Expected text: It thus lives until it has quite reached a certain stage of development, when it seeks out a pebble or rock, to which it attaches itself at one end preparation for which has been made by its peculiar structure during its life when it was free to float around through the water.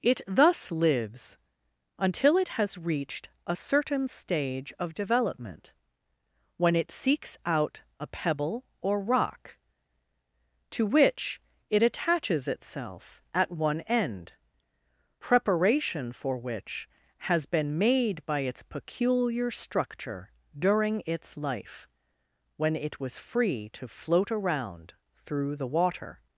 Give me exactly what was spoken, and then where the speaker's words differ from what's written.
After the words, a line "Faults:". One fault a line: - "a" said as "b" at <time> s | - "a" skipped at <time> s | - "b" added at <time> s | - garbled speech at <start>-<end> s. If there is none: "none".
It thus lives until it has reached a certain stage of development, when it seeks out a pebble or rock, to which it attaches itself at one end preparation for which has been made by its peculiar structure during its life when it was free to float around through the water.
Faults:
- "quite" skipped at 2.8 s